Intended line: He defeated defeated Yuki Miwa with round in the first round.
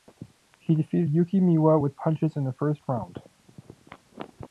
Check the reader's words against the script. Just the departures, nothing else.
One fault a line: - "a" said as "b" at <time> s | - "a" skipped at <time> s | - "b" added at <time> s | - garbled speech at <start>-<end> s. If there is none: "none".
- "defeated" skipped at 1.1 s
- "round" said as "punches" at 1.9 s